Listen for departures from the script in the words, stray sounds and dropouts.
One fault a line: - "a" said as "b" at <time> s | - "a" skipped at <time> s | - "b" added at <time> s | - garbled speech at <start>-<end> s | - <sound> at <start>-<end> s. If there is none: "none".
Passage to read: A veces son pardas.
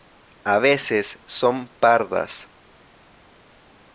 none